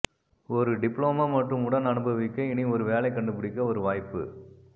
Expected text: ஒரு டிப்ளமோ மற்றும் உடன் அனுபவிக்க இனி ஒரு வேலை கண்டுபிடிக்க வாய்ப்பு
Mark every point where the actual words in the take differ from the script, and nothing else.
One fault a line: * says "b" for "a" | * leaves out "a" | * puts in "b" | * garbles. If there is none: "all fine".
* puts in "ஒரு"